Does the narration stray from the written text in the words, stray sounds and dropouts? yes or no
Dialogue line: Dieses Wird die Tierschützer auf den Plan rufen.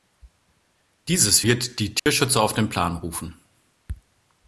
yes